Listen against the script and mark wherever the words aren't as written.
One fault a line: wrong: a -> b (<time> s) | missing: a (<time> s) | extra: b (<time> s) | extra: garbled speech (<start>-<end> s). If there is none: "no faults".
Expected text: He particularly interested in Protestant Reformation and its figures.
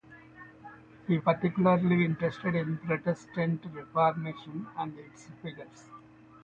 no faults